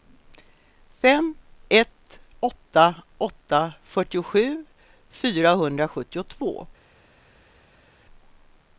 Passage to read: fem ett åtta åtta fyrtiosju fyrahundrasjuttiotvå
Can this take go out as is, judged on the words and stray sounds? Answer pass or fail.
pass